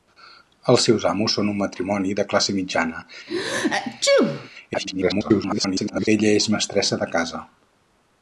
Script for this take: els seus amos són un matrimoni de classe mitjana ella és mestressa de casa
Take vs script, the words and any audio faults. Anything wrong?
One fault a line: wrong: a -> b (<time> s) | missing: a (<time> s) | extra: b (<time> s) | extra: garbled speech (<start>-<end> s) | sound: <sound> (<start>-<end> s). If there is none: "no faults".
sound: sneeze (3.3-4.5 s)
extra: garbled speech (4.7-6.1 s)